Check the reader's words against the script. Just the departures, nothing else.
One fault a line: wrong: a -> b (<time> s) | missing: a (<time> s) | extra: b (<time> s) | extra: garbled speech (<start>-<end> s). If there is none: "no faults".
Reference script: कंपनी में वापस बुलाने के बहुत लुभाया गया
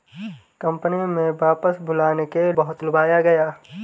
no faults